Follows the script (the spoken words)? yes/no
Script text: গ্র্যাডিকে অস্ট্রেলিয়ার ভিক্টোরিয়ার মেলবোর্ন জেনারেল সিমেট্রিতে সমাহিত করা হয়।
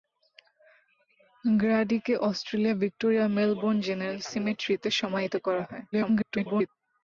no